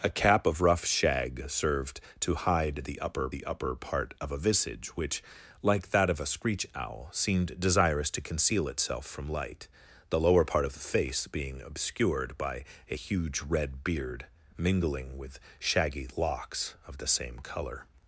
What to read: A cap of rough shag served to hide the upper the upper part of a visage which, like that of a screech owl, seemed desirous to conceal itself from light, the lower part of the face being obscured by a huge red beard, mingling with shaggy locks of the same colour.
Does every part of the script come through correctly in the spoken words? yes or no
yes